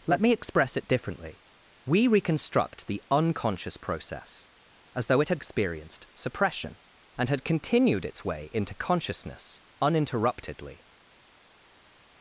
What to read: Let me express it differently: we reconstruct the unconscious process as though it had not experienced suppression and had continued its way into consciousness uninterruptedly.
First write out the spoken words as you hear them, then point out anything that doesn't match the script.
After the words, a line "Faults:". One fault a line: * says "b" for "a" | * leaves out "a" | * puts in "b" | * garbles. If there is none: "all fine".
Let me express it differently: we reconstruct the unconscious process as though it had experienced suppression and had continued its way into consciousness uninterruptedly.
Faults:
* leaves out "not"